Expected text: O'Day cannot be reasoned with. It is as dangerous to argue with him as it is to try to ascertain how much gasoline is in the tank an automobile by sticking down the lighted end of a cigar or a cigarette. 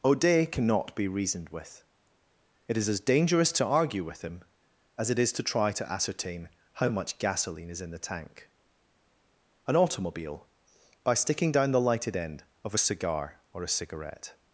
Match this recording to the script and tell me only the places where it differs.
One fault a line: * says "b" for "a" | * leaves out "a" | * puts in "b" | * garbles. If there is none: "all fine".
all fine